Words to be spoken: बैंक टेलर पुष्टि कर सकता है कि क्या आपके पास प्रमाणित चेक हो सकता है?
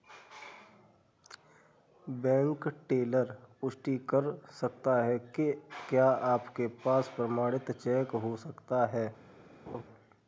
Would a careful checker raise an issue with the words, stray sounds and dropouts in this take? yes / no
yes